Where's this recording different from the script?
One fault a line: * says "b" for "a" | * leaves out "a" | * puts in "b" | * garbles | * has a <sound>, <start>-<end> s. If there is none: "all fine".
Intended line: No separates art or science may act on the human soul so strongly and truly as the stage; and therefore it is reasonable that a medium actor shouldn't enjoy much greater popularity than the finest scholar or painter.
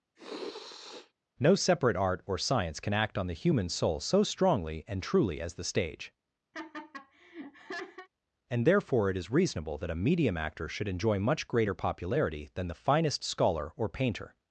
* has a sniff, 0.2-1.1 s
* says "separate" for "separates"
* says "can" for "may"
* has a laugh, 6.5-8.1 s
* says "should" for "shouldn't"